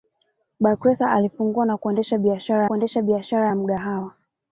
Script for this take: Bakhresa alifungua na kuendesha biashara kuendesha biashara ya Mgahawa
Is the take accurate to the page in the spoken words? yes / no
yes